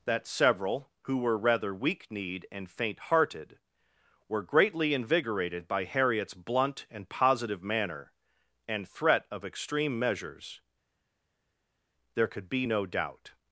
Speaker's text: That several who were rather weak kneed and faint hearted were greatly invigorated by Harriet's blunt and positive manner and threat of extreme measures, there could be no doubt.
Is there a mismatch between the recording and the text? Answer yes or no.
no